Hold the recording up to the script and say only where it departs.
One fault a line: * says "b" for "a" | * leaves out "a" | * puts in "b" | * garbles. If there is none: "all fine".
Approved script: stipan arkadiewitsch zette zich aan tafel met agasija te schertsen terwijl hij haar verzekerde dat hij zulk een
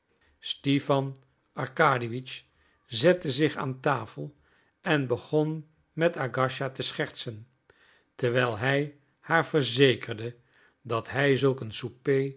* puts in "en begon"